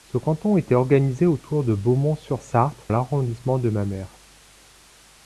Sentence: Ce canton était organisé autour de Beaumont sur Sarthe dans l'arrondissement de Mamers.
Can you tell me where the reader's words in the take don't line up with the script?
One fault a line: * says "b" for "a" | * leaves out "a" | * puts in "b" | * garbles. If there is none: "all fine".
* leaves out "dans"